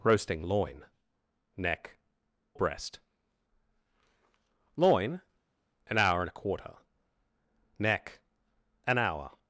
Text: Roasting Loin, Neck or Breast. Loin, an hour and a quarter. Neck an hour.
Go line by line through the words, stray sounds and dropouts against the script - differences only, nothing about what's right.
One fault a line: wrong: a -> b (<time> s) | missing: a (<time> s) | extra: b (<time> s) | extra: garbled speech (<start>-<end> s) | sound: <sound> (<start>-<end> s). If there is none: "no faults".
missing: or (2.0 s)